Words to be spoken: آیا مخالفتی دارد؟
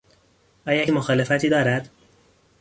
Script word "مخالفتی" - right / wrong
right